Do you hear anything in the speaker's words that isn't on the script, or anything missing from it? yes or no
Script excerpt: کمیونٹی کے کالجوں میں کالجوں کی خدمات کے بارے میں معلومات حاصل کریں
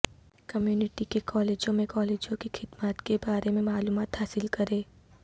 no